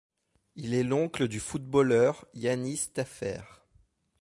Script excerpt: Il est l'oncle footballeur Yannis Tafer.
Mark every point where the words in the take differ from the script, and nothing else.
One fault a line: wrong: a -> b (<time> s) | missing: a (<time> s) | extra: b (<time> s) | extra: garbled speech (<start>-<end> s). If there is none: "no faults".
extra: du (1.3 s)